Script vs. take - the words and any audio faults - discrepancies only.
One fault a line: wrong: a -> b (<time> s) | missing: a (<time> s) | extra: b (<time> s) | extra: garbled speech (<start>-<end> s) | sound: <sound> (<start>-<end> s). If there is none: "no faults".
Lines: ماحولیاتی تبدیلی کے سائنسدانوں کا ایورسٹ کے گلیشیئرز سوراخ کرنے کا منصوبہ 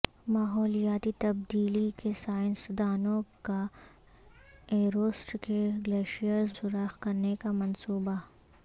no faults